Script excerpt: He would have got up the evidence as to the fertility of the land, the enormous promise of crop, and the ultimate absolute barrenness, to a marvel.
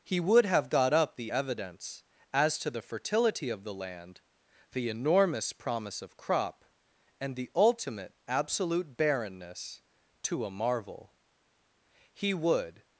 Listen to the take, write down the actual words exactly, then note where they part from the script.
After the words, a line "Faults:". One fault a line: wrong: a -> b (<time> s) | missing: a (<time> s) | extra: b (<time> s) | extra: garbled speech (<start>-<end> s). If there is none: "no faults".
He would have got up the evidence as to the fertility of the land, the enormous promise of crop, and the ultimate absolute barrenness, to a marvel. He would
Faults:
extra: He would (12.1 s)